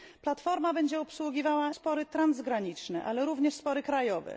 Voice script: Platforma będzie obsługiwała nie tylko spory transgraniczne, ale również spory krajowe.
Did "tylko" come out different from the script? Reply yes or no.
yes